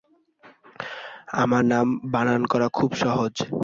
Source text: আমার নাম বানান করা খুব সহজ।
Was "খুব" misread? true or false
false